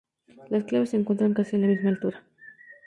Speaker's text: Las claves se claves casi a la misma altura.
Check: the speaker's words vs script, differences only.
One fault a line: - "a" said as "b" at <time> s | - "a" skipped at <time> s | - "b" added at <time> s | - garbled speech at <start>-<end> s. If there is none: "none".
- "claves" said as "encuentran" at 1.0 s